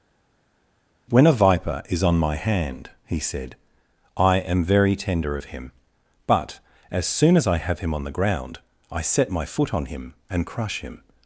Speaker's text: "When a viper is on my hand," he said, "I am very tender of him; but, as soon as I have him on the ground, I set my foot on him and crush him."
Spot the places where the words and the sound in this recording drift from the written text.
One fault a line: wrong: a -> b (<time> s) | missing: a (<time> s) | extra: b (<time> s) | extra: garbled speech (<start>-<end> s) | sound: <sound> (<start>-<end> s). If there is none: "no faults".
no faults